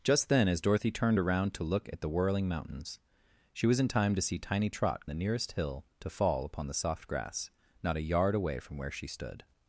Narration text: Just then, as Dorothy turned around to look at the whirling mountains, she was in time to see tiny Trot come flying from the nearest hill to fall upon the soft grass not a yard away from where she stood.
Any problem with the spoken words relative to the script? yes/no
yes